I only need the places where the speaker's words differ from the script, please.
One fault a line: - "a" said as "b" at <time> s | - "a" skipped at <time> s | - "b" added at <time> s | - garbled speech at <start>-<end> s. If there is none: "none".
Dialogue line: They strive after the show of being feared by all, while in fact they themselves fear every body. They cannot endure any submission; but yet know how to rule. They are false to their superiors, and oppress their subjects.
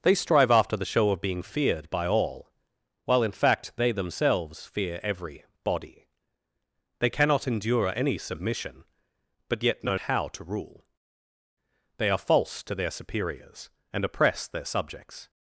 none